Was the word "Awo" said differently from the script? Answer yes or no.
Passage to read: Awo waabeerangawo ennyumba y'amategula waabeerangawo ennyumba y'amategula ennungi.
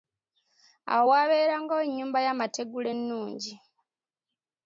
no